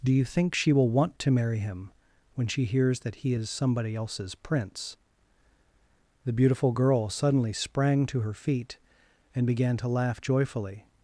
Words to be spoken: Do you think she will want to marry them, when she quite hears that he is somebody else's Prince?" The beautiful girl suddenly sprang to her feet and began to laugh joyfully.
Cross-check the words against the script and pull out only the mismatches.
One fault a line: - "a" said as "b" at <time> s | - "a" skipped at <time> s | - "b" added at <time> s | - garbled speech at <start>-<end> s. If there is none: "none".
- "them" said as "him" at 1.6 s
- "quite" skipped at 2.6 s